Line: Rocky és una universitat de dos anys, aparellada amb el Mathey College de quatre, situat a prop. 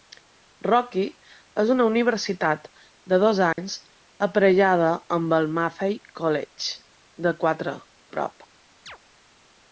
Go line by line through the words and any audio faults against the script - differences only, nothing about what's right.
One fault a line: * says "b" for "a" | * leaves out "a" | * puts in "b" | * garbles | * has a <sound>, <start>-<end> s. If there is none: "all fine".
* has a dropout, 3.5-3.6 s
* leaves out "situat"
* has a chirp, 8.9-9.0 s